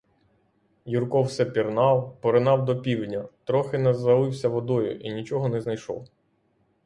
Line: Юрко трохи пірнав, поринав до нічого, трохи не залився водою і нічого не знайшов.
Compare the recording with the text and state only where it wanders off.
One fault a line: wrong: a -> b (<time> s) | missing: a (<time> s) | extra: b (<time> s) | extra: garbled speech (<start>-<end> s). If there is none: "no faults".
wrong: трохи -> все (1.2 s)
wrong: нічого -> півдня (2.8 s)